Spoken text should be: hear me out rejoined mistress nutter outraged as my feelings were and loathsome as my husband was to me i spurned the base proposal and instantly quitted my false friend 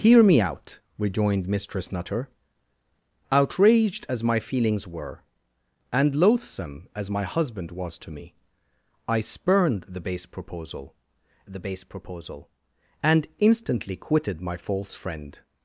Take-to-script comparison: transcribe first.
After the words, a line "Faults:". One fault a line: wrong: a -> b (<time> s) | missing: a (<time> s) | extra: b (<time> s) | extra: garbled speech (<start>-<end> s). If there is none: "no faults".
hear me out rejoined mistress nutter outraged as my feelings were and loathsome as my husband was to me i spurned the base proposal the base proposal and instantly quitted my false friend
Faults:
extra: the base proposal (11.5 s)